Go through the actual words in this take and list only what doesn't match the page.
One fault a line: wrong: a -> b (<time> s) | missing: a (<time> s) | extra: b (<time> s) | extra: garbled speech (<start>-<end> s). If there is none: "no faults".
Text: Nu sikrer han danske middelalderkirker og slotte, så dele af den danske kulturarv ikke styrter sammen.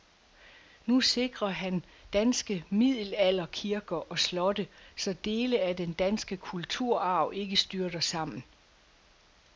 no faults